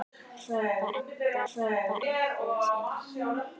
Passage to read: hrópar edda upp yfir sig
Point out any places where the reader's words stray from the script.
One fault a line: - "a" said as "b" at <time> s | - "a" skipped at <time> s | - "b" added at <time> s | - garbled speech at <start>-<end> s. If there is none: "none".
- "upp" said as "hrópar" at 1.5 s